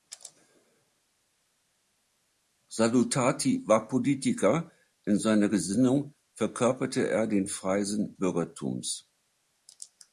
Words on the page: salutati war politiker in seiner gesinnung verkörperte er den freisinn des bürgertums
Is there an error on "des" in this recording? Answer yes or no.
yes